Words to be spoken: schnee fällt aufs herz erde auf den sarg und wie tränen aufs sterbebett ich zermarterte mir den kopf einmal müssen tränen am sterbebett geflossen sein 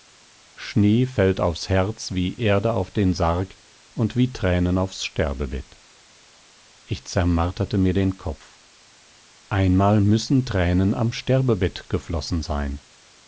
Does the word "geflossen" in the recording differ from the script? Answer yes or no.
no